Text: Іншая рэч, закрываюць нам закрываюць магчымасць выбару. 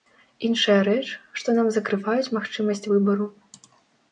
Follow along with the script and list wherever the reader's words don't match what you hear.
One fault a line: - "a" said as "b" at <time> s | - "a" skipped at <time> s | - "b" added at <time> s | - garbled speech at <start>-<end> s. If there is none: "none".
- "закрываюць" said as "што" at 1.4 s